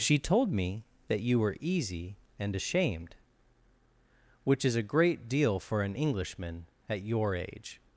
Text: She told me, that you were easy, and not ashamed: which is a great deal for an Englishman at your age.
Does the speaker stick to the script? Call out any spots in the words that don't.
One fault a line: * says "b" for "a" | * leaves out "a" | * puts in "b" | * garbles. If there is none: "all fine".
* leaves out "not"